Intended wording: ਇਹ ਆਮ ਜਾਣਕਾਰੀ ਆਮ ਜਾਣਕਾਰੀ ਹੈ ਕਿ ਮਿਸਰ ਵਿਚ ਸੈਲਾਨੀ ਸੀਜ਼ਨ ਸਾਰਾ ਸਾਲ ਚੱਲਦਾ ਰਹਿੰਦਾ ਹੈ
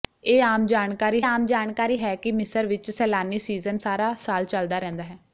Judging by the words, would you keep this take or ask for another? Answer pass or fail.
pass